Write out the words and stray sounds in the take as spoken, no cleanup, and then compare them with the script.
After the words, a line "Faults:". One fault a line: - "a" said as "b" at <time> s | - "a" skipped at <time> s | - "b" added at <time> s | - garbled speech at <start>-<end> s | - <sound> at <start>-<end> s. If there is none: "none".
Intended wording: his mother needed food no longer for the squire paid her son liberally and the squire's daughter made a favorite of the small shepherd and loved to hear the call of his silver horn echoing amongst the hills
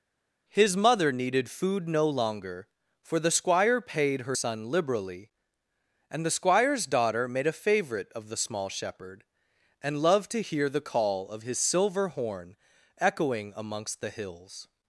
his mother needed food no longer for the squire paid her son liberally and the squire's daughter made a favorite of the small shepherd and loved to hear the call of his silver horn echoing amongst the hills
Faults:
none